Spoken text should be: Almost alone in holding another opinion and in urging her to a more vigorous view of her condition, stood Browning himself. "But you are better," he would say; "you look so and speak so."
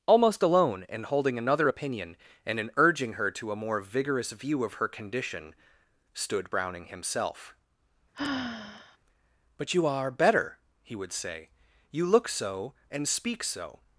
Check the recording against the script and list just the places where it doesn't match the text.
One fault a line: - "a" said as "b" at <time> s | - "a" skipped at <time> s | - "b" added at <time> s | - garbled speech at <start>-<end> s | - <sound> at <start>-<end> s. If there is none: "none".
- sigh at 8.1-9.0 s